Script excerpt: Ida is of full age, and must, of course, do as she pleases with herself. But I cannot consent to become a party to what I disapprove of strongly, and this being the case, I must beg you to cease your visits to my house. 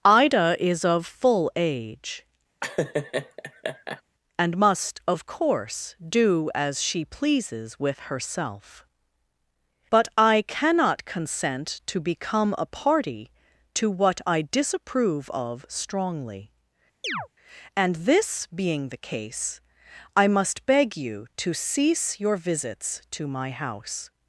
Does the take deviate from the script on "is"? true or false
false